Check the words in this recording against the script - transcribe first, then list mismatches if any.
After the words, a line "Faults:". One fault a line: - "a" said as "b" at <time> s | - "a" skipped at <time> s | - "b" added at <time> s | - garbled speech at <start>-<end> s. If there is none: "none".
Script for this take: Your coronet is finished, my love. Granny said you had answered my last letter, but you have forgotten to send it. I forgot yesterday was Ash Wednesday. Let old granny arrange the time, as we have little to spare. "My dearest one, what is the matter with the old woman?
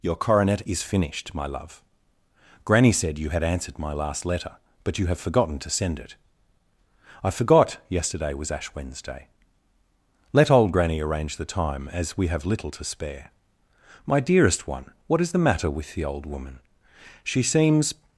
Your coronet is finished, my love. Granny said you had answered my last letter, but you have forgotten to send it. I forgot yesterday was Ash Wednesday. Let old granny arrange the time, as we have little to spare. "My dearest one, what is the matter with the old woman? She seems
Faults:
- "She seems" added at 17.2 s